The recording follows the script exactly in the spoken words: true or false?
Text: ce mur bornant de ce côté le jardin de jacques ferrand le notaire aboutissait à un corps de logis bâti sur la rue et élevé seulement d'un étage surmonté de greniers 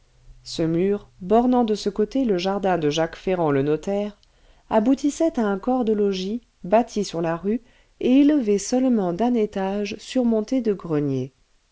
true